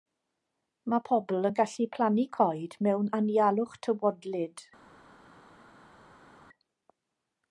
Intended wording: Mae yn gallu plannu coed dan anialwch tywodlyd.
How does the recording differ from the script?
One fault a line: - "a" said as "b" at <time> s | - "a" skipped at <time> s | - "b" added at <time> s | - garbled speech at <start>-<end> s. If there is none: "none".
- "pobl" added at 1.1 s
- "dan" said as "mewn" at 2.9 s